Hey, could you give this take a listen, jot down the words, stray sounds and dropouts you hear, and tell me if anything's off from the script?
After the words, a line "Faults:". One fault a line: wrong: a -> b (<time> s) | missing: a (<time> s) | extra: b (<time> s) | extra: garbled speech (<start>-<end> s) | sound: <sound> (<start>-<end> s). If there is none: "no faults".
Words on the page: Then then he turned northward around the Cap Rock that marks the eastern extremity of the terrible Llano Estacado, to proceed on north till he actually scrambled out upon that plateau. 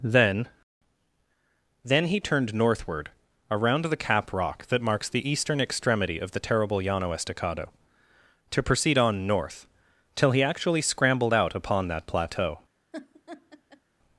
Then then he turned northward around the Cap Rock that marks the eastern extremity of the terrible Llano Estacado, to proceed on north till he actually scrambled out upon that plateau.
Faults:
sound: laugh (12.9-13.8 s)